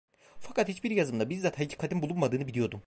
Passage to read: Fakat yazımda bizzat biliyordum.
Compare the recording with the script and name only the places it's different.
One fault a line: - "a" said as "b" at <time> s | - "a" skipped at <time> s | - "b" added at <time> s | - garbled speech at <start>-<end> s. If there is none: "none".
- "hiçbir" added at 0.7 s
- "hakikatin bulunmadığını" added at 1.6 s